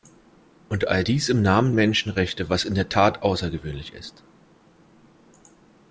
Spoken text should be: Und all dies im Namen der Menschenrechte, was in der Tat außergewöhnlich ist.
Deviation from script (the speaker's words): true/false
true